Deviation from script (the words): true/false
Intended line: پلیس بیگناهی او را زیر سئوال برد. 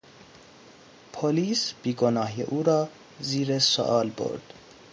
false